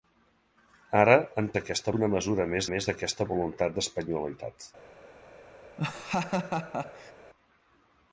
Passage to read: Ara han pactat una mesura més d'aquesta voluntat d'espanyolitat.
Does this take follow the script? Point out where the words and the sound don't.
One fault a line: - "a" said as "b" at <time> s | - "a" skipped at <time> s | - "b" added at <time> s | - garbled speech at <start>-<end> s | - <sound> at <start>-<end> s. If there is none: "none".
- "pactat" said as "d'aquesta" at 1.6 s
- "més" added at 2.7 s
- laugh at 5.8-7.1 s